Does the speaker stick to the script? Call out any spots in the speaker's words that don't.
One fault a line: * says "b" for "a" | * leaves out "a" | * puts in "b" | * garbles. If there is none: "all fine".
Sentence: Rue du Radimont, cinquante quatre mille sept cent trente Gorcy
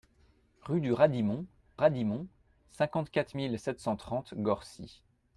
* puts in "Radimont"